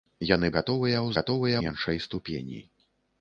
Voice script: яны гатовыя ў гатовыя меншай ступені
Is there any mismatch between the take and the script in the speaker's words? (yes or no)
no